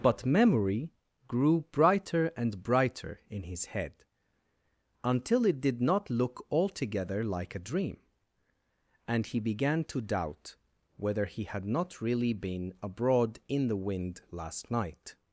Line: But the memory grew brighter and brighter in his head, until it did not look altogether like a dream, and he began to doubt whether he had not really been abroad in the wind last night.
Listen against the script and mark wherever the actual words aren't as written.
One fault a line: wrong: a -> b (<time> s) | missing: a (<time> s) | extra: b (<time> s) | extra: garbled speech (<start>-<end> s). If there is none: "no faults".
missing: the (0.2 s)